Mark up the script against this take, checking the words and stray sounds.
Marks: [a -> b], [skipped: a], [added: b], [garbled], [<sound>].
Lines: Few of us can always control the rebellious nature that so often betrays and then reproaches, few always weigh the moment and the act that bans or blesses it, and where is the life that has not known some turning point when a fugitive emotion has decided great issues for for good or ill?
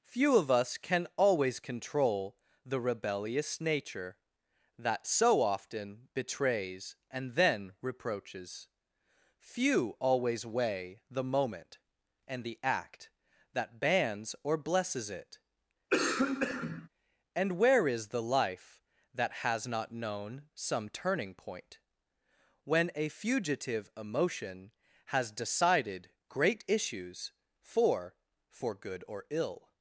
Few of us can always control the rebellious nature that so often betrays and then reproaches, few always weigh the moment and the act that bans or blesses it, [cough] and where is the life that has not known some turning point when a fugitive emotion has decided great issues for for good or ill?